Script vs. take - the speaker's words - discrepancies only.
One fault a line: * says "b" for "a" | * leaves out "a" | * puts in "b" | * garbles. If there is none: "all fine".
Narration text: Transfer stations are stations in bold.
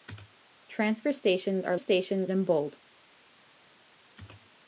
all fine